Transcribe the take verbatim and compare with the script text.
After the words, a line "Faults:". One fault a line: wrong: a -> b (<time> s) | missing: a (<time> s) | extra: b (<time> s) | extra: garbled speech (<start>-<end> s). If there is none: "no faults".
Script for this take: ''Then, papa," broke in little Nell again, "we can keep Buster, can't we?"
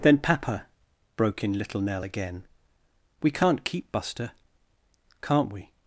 ''Then, papa," broke in little Nell again, "we can't keep Buster, can't we?"
Faults:
wrong: can -> can't (3.3 s)